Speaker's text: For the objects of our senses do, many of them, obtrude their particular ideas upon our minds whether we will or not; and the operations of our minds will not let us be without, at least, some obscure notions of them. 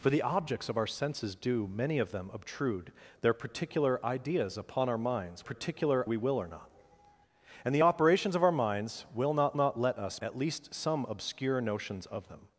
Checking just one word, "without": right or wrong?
wrong